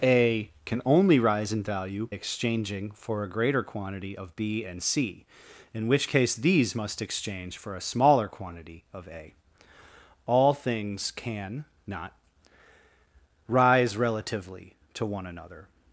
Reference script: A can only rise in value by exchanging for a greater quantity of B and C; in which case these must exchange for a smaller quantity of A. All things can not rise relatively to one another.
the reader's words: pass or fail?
fail